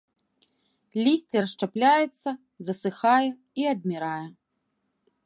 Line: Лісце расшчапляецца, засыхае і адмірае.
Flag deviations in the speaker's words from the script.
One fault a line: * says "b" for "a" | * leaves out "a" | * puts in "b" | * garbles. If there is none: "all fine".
all fine